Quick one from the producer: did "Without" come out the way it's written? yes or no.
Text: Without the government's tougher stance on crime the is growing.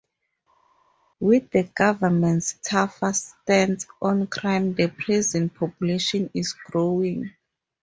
no